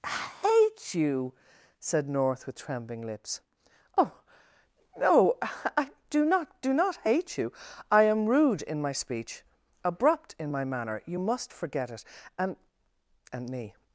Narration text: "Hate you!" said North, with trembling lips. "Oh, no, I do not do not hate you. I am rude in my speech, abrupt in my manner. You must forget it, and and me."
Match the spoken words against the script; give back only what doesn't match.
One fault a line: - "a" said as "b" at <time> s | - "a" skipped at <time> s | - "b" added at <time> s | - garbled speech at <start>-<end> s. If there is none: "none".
none